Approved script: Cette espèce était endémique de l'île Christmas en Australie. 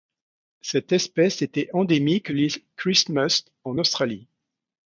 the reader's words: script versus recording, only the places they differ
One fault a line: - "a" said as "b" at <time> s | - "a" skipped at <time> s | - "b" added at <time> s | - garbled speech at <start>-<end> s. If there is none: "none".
- "de" skipped at 2.3 s